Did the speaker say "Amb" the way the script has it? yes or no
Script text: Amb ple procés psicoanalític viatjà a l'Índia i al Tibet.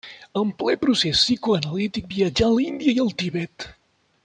no